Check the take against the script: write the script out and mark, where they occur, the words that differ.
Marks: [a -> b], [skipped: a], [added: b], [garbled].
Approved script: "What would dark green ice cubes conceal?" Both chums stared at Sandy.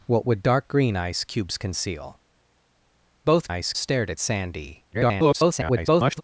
"What would dark green ice cubes conceal?" Both [chums -> ice] stared at Sandy. [garbled]